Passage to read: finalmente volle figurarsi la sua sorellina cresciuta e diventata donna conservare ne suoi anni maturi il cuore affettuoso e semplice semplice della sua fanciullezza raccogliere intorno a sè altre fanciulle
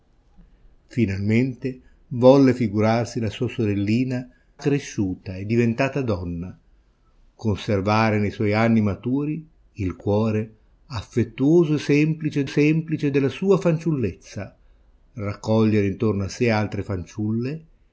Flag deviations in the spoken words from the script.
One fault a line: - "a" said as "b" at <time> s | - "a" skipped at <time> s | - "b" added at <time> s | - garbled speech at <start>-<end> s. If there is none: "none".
none